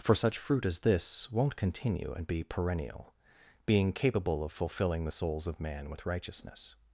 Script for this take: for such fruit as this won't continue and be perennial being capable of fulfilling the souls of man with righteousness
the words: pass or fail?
pass